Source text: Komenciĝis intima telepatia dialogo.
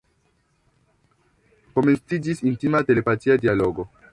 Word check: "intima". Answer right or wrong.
right